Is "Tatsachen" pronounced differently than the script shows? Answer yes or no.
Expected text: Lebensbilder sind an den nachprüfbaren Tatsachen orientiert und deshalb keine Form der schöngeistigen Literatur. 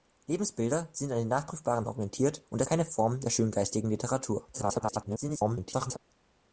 yes